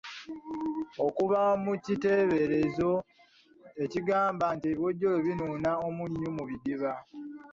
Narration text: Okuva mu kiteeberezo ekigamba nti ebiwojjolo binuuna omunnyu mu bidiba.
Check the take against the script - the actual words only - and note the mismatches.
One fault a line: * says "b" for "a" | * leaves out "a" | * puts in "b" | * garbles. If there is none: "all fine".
all fine